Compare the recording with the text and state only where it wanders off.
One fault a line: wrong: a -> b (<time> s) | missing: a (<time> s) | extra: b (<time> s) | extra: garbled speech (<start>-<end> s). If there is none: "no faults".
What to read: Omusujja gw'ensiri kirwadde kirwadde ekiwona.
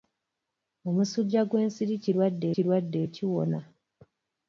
no faults